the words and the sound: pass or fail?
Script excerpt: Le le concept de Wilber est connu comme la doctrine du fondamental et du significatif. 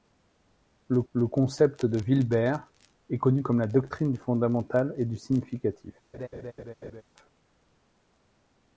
fail